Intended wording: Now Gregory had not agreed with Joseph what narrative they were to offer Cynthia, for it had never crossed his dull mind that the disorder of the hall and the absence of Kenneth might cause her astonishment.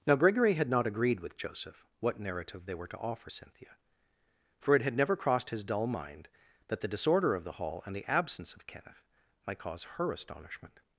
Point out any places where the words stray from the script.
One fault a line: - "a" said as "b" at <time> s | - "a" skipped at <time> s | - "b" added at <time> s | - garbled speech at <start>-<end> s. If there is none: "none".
none